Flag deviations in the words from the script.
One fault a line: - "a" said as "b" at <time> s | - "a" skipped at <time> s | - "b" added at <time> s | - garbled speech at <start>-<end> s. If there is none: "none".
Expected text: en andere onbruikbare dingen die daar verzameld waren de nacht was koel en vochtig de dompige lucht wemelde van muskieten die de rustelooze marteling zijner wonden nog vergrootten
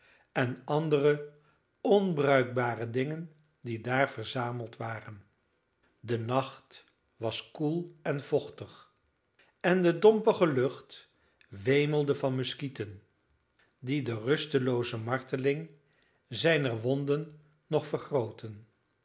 - "en" added at 9.6 s